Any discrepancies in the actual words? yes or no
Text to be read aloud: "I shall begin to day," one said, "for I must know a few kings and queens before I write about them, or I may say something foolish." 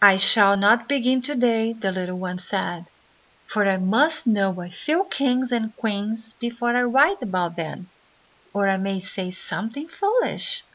yes